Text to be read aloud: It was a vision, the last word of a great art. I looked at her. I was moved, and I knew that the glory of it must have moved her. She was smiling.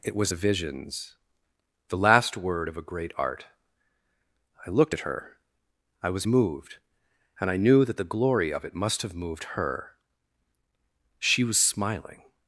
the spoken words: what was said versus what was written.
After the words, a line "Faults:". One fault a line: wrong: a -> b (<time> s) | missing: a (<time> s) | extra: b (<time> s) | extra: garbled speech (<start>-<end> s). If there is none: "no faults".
It was a visions, the last word of a great art. I looked at her. I was moved, and I knew that the glory of it must have moved her. She was smiling.
Faults:
wrong: vision -> visions (0.3 s)